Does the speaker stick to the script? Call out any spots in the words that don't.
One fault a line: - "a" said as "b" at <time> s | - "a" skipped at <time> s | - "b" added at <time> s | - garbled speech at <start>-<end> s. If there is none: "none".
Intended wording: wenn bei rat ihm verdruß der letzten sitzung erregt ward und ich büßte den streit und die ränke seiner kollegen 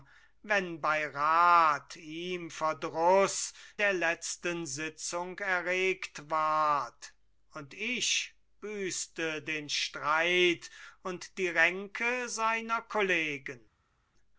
none